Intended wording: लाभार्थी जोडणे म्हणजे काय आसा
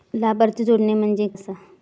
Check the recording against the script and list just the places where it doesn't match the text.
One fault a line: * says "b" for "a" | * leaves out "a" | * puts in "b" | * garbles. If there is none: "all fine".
* leaves out "काय"